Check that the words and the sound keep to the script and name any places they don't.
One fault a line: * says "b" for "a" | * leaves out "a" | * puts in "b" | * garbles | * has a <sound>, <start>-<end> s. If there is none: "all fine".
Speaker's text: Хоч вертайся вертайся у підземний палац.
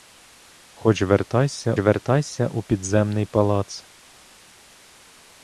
all fine